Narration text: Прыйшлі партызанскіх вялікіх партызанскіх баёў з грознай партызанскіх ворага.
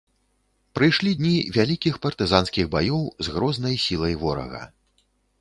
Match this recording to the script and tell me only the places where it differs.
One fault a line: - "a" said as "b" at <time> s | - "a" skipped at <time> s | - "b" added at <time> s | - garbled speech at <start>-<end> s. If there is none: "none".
- "партызанскіх" said as "дні" at 1.2 s
- "партызанскіх" said as "сілай" at 3.9 s